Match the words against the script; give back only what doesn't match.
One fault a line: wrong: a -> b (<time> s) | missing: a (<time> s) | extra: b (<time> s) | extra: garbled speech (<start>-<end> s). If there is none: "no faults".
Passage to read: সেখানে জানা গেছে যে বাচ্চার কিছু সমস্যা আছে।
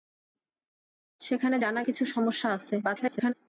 missing: গেছে যে বাচ্চার (1.8 s)
extra: garbled speech (2.8-3.3 s)